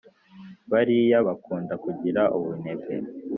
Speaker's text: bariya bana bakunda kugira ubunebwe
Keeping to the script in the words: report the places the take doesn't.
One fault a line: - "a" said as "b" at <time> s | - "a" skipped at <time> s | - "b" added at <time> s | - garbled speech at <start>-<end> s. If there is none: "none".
- "bana" skipped at 1.2 s